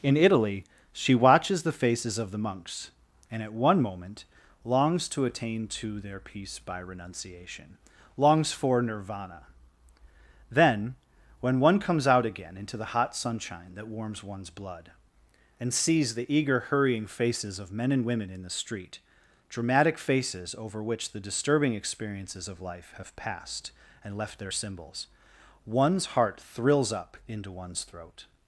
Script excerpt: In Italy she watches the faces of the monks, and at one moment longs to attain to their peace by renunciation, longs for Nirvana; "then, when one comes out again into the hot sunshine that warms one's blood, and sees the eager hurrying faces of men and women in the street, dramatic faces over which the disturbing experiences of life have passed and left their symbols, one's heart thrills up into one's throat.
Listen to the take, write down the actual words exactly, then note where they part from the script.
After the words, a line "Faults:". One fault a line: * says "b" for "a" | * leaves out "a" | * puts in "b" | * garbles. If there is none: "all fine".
In Italy she watches the faces of the monks, and at one moment longs to attain to their peace by renunciation, longs for Nirvana; "then, when one comes out again into the hot sunshine that warms one's blood, and sees the eager hurrying faces of men and women in the street, dramatic faces over which the disturbing experiences of life have passed and left their symbols, one's heart thrills up into one's throat.
Faults:
all fine